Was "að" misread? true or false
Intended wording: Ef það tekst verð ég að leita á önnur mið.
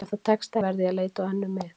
false